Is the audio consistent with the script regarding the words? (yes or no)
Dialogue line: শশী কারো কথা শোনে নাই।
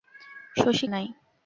no